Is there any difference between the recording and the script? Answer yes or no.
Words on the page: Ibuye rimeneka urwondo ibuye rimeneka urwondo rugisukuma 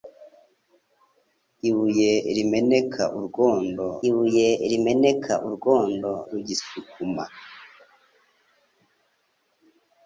no